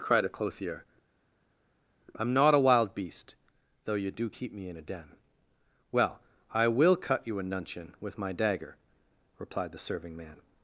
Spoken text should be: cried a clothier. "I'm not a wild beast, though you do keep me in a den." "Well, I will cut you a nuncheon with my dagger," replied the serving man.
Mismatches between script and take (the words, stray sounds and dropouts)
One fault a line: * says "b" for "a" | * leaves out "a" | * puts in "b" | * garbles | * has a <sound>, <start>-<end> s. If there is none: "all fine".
all fine